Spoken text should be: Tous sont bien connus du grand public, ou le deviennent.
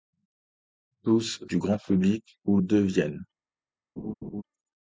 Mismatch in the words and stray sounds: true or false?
true